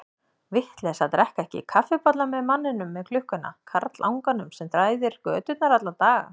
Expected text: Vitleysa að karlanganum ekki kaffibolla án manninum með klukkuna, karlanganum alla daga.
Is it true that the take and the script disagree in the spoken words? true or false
true